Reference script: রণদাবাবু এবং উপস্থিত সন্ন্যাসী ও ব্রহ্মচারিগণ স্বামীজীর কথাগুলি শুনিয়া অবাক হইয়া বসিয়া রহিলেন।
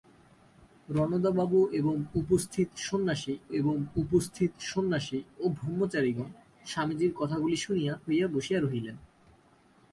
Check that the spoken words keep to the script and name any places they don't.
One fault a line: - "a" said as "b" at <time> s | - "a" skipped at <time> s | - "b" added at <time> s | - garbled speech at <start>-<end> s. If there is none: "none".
- "এবং উপস্থিত সন্ন্যাসী" added at 3.5 s
- "অবাক" skipped at 7.9 s